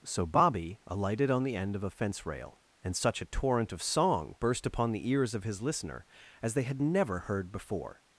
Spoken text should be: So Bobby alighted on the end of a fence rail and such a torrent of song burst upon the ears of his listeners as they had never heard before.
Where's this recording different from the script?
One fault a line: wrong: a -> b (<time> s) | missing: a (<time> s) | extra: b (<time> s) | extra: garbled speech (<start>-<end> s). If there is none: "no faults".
wrong: listeners -> listener (5.6 s)